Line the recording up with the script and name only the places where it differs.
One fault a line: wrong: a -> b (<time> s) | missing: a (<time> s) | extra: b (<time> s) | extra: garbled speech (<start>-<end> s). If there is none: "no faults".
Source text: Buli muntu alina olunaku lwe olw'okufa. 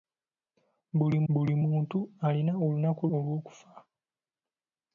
extra: buli (1.3 s)
missing: lwe (3.0 s)